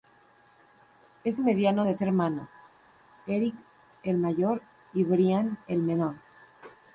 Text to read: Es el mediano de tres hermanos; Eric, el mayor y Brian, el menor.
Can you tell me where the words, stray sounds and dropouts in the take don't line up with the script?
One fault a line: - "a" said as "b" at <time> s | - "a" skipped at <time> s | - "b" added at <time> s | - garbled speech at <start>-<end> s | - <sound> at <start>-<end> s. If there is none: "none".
- "el" skipped at 1.4 s
- "tres" skipped at 1.9 s